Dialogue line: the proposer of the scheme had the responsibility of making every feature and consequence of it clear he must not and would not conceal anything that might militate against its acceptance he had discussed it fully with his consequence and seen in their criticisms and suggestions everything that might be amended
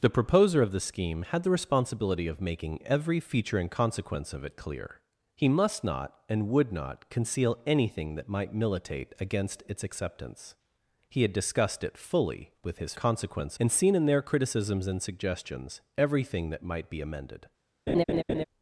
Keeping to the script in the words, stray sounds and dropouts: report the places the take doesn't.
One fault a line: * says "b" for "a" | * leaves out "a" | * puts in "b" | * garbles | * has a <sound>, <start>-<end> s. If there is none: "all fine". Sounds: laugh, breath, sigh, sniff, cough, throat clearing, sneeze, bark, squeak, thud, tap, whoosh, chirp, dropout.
* has a laugh, 17.9-18.4 s